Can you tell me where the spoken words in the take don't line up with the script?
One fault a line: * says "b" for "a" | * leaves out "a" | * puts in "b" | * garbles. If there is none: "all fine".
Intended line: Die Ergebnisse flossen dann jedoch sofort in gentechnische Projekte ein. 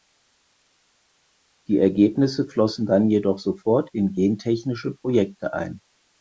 all fine